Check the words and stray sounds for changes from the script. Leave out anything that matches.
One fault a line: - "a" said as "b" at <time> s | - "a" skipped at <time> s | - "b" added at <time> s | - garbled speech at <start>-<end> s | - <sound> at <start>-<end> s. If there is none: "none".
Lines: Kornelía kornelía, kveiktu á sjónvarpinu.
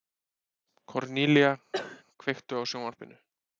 - "kornelía" skipped at 1.5 s
- cough at 1.7-2.0 s